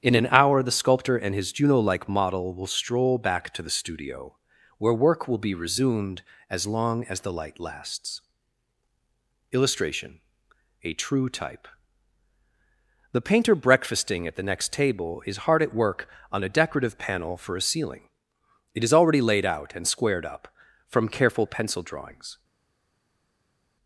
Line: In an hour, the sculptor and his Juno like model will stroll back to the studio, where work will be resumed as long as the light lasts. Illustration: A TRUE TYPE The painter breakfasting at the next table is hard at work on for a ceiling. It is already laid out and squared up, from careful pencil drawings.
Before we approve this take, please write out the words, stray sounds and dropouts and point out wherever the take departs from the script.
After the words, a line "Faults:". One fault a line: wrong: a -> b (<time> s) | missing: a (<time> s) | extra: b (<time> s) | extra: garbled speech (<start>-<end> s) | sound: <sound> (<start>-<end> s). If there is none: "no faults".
In an hour, the sculptor and his Juno like model will stroll back to the studio, where work will be resumed as long as the light lasts. Illustration: A TRUE TYPE The painter breakfasting at the next table is hard at work on a decorative panel for a ceiling. It is already laid out and squared up, from careful pencil drawings.
Faults:
extra: a decorative panel (16.4 s)